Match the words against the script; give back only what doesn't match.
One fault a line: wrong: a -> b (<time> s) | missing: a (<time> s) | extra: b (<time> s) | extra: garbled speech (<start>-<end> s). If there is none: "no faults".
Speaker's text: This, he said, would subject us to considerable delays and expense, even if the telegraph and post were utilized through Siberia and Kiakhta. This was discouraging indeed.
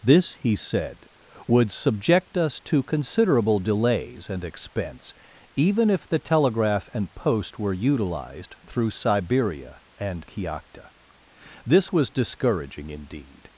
no faults